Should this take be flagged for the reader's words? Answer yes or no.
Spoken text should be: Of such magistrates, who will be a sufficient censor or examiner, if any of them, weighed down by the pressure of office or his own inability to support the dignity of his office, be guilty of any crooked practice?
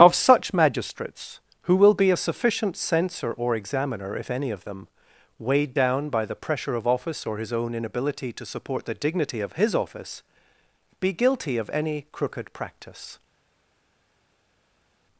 no